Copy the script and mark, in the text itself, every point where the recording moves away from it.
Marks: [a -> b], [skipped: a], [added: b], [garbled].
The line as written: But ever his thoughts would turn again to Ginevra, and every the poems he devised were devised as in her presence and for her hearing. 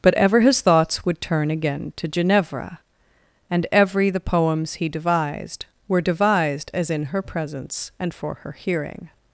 But ever his thoughts would turn again to Ginevra, and every the poems he devised were devised as in her presence and for her hearing.